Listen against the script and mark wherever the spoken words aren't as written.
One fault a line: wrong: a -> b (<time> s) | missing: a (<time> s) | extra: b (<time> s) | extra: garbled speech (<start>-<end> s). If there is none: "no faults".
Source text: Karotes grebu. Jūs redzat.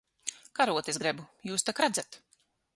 extra: tak (1.7 s)